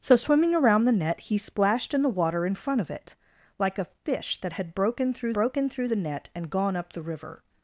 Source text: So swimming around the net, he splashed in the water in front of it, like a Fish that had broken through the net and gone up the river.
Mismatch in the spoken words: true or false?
true